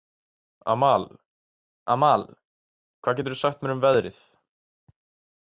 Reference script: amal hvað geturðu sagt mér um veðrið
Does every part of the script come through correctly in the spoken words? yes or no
no